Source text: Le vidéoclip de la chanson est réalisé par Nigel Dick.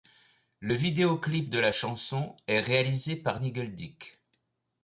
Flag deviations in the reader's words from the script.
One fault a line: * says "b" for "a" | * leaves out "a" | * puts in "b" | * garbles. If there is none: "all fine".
all fine